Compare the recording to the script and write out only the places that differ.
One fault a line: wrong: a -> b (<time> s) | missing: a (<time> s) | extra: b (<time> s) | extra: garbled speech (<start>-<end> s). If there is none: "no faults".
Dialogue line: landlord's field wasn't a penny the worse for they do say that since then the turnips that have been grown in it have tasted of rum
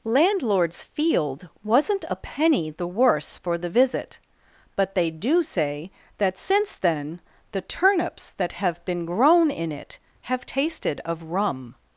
extra: the visit but (3.5 s)